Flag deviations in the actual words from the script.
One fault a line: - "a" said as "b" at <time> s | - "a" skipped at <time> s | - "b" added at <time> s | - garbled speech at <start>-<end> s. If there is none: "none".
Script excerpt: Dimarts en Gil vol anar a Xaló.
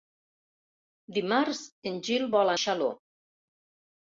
- "anar a" skipped at 2.6 s